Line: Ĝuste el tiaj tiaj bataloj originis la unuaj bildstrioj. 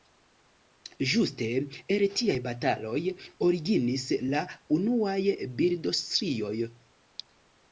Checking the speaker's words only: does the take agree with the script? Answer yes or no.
no